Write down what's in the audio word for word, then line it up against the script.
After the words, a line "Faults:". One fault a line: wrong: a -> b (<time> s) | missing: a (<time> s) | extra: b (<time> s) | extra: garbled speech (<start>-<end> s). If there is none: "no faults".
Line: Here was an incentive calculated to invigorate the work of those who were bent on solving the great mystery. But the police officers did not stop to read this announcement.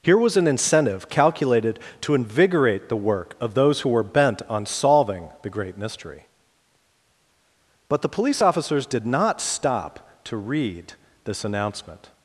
Here was an incentive calculated to invigorate the work of those who were bent on solving the great mystery. But the police officers did not stop to read this announcement.
Faults:
no faults